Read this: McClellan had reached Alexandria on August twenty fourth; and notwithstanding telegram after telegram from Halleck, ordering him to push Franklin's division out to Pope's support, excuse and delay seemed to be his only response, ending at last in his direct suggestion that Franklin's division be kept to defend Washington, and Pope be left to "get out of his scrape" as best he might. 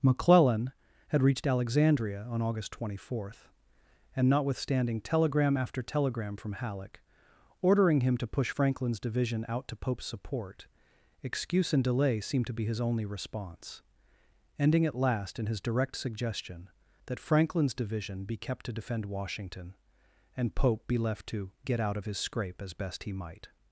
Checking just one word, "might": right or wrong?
right